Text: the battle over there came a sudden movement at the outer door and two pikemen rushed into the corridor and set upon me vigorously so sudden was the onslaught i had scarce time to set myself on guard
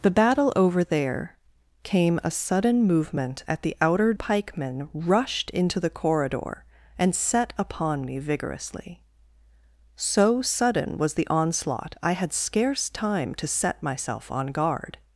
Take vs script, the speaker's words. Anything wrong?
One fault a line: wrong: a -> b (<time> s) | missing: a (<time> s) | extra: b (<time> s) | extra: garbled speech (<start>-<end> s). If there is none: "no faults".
missing: door and two (4.1 s)